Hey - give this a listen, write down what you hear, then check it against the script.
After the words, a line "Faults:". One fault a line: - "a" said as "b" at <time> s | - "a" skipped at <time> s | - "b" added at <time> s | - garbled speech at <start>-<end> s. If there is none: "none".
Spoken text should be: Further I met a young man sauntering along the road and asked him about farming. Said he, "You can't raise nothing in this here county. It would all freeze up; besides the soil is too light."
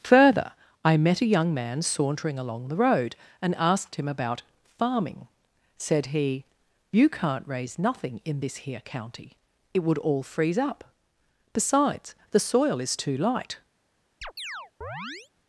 Further I met a young man sauntering along the road and asked him about farming. Said he, "You can't raise nothing in this here county. It would all freeze up; besides the soil is too light."
Faults:
none